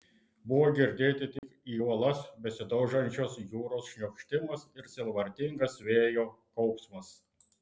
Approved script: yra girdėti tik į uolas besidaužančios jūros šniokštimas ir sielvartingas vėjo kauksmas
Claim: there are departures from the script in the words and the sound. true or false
true